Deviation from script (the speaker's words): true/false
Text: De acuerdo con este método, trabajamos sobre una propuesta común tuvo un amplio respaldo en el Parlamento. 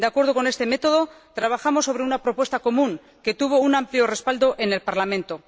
true